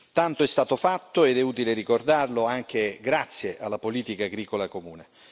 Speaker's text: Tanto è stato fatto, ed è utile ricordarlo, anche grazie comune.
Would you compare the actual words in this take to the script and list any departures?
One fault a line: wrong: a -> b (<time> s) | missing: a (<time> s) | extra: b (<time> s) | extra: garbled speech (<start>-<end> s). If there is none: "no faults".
extra: alla politica agricola (3.6 s)